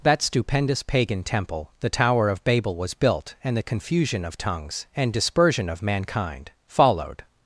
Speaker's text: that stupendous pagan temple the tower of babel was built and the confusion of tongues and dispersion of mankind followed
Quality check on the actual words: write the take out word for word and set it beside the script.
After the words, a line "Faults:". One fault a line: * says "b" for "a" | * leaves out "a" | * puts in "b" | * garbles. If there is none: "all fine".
that stupendous pagan temple the tower of babel was built and the confusion of tongues and dispersion of mankind followed
Faults:
all fine